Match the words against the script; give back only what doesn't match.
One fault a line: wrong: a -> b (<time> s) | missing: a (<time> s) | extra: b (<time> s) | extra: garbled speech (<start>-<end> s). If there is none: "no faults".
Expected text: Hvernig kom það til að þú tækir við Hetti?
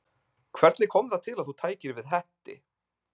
no faults